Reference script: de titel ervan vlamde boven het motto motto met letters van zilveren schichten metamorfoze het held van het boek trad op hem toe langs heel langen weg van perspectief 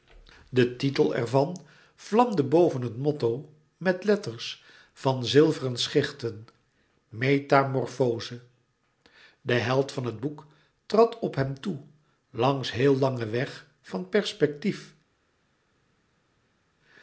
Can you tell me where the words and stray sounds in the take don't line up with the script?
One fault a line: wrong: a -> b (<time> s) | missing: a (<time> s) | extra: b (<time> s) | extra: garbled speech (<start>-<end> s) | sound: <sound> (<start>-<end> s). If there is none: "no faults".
missing: motto (3.5 s)
wrong: het -> de (9.4 s)